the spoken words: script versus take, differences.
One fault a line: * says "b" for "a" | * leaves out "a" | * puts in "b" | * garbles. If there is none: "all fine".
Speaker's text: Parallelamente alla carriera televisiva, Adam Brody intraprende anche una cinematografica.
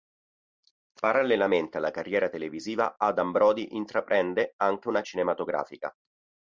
all fine